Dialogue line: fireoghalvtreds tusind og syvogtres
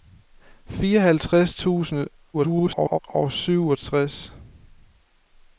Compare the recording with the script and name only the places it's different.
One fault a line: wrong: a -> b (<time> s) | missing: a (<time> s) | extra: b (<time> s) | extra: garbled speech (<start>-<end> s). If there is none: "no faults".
extra: garbled speech (2.3-3.0 s)